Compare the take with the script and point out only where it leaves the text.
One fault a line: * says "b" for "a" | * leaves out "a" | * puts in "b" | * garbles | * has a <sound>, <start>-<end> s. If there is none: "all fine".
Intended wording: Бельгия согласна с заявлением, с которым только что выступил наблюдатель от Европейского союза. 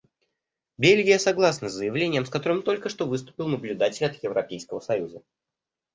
all fine